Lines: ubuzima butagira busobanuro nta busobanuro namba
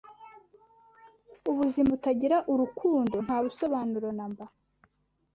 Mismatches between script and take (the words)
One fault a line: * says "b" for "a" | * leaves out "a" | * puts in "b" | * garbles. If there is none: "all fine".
* says "urukundo" for "busobanuro"